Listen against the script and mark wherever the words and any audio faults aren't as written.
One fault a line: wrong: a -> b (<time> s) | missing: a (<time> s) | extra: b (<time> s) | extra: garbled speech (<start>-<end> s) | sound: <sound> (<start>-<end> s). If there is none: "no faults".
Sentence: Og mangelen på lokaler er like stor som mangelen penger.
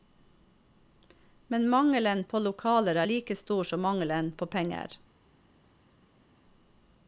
wrong: Og -> Men (1.5 s)
extra: på (4.3 s)